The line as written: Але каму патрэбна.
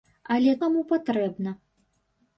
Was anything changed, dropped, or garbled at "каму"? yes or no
no